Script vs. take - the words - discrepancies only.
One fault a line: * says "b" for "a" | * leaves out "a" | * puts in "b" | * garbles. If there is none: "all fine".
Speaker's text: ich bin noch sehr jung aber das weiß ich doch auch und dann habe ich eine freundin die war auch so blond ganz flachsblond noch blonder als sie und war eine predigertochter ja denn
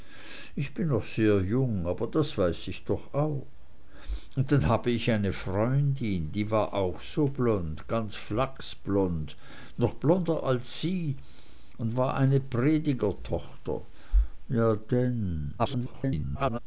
* garbles